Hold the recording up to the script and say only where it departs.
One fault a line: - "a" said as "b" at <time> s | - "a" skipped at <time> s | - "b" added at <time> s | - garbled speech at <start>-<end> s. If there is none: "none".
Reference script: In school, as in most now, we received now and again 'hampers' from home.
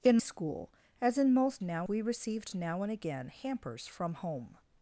none